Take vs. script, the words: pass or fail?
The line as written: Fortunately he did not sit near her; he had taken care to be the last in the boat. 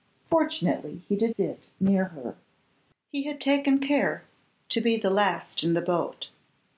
fail